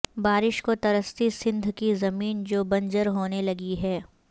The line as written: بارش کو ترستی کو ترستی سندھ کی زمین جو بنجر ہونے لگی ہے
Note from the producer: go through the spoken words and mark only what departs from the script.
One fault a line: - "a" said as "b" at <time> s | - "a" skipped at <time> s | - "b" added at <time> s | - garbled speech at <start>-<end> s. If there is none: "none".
- "کو ترستی" skipped at 1.3 s